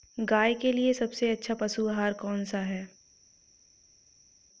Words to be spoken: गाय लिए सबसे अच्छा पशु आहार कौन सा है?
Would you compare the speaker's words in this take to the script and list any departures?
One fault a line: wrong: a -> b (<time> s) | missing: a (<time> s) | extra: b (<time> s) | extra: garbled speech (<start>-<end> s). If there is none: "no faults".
extra: के (0.5 s)